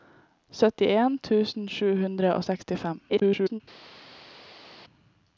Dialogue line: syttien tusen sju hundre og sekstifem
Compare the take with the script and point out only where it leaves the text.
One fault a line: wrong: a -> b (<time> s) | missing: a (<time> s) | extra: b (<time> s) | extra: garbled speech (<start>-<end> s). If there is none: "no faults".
extra: garbled speech (3.1-3.6 s)